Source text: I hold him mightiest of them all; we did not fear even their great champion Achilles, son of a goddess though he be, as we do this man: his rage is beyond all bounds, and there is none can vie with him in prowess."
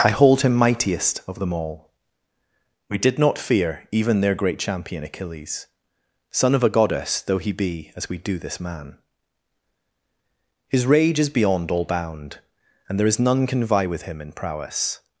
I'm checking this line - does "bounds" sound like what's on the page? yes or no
no